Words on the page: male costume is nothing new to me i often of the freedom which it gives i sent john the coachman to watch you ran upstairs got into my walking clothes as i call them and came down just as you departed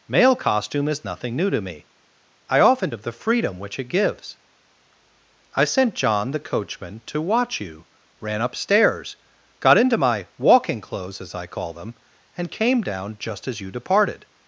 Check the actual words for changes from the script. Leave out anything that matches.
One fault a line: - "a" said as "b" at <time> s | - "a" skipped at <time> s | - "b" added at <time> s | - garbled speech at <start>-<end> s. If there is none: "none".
none